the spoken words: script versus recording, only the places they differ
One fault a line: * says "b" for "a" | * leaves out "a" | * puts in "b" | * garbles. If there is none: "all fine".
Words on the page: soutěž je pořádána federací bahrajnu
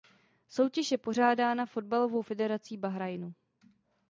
* puts in "fotbalovou"